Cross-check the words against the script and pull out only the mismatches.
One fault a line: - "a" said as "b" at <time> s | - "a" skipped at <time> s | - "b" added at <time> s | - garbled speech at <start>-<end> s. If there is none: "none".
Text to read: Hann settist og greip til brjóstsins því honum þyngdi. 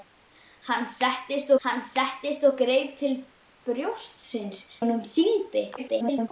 - "hann settist" added at 1.7 s
- "því" skipped at 4.6 s
- garbled speech at 5.8-6.3 s